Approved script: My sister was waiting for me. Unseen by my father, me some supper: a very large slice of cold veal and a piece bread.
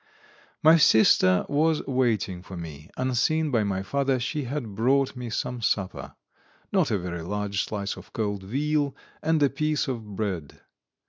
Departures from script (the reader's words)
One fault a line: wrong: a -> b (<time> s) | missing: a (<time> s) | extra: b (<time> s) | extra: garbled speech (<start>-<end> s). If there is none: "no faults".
extra: she had brought (4.2 s)
extra: not (6.7 s)
extra: of (9.9 s)